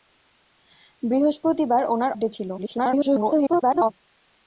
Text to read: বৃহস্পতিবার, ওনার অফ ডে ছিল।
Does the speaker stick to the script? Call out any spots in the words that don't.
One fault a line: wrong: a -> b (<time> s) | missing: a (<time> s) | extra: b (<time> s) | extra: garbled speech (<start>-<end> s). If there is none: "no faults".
missing: অফ (2.1 s)
extra: garbled speech (2.6-3.9 s)